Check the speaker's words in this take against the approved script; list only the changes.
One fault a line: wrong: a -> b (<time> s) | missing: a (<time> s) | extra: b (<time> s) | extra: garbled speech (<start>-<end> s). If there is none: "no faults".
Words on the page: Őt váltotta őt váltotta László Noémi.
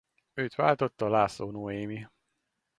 missing: őt váltotta (1.1 s)